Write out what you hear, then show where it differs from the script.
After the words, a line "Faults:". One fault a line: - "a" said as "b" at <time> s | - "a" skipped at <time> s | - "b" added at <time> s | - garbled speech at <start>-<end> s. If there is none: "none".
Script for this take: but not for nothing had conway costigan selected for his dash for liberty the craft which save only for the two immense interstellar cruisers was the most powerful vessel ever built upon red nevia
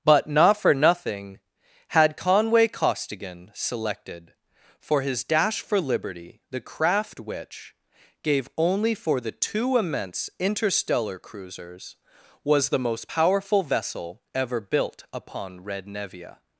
but not for nothing had conway costigan selected for his dash for liberty the craft which gave only for the two immense interstellar cruisers was the most powerful vessel ever built upon red nevia
Faults:
- "save" said as "gave" at 8.2 s